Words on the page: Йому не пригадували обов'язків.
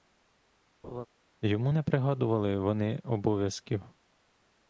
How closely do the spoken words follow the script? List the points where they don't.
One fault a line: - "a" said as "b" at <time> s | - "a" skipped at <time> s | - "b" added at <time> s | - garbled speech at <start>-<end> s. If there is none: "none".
- "вони" added at 2.6 s